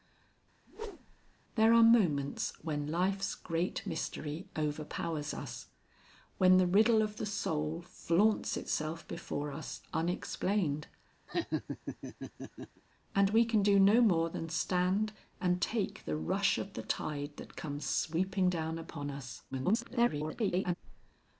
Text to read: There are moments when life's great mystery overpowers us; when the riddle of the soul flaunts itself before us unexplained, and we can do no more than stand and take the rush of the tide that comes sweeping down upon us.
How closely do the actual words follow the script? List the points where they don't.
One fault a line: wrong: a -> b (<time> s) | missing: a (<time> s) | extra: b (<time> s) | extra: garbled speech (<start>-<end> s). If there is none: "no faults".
extra: garbled speech (19.5-20.7 s)